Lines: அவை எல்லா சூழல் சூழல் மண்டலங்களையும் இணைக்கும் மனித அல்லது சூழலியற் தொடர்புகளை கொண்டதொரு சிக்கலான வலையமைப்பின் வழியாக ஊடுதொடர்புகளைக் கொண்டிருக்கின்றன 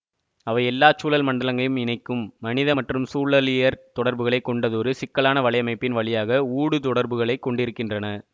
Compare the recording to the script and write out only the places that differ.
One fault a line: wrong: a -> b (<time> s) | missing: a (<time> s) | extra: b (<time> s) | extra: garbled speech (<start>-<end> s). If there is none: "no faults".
missing: சூழல் (1.2 s)
wrong: அல்லது -> மற்றும் (2.7 s)